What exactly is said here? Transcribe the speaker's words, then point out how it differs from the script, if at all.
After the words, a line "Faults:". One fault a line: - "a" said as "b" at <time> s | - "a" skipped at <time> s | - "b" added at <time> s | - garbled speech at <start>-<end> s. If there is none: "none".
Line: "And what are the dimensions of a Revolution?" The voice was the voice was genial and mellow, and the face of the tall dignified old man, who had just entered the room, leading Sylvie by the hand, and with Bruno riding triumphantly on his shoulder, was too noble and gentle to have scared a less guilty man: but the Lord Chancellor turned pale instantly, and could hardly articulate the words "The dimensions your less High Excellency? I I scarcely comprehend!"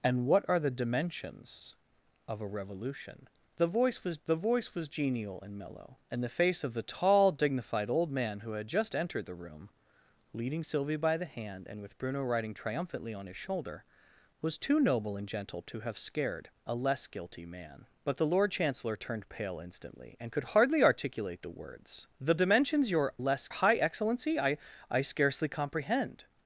"And what are the dimensions of a Revolution?" The voice was the voice was genial and mellow, and the face of the tall dignified old man, who had just entered the room, leading Sylvie by the hand, and with Bruno riding triumphantly on his shoulder, was too noble and gentle to have scared a less guilty man: but the Lord Chancellor turned pale instantly, and could hardly articulate the words "The dimensions your less High Excellency? I I scarcely comprehend!"
Faults:
none